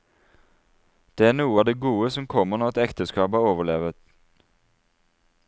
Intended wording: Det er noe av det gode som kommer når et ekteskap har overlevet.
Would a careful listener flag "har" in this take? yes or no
no